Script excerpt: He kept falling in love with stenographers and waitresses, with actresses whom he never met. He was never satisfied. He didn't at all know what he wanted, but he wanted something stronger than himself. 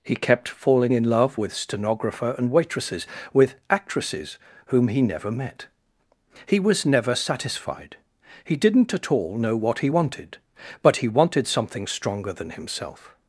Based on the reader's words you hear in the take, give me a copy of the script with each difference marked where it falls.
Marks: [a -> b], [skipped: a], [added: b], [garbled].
He kept falling in love with [stenographers -> stenographer] and waitresses, with actresses whom he never met. He was never satisfied. He didn't at all know what he wanted, but he wanted something stronger than himself.